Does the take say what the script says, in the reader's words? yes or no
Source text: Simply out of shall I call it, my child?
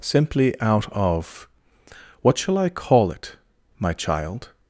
no